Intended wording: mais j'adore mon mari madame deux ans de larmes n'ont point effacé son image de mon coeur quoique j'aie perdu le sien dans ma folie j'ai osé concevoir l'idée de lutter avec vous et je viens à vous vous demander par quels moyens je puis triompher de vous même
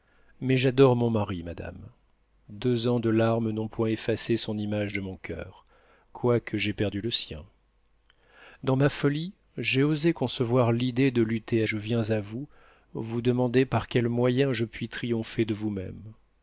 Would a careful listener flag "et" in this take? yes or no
yes